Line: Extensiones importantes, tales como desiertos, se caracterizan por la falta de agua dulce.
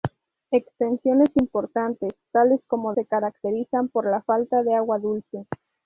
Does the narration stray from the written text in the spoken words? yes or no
yes